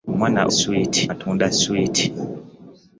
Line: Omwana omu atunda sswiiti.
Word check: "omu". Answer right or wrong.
wrong